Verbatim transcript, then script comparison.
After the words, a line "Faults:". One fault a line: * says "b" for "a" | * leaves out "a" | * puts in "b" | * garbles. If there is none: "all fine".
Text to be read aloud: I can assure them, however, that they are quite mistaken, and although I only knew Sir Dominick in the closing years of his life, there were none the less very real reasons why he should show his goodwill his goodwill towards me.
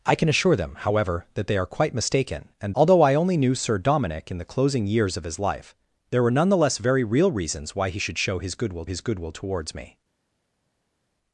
I can assure them, however, that they are quite mistaken, and although I only knew Sir Dominick in the closing years of his life, there were none the less very real reasons why he should show his goodwill his goodwill towards me.
Faults:
all fine